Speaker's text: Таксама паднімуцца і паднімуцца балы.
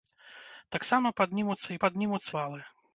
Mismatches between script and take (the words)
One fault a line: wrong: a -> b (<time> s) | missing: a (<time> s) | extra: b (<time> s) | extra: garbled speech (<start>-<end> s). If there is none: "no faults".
no faults